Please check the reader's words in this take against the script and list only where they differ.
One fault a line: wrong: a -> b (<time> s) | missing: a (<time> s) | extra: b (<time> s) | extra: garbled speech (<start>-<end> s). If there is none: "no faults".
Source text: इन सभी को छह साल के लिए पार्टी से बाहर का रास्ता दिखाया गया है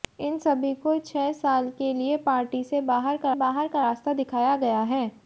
extra: बाहर का (3.4 s)